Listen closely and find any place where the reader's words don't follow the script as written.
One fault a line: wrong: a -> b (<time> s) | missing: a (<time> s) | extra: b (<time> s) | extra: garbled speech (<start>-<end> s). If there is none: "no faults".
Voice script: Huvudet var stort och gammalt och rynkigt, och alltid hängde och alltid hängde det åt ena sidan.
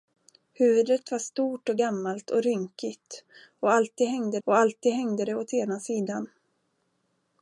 no faults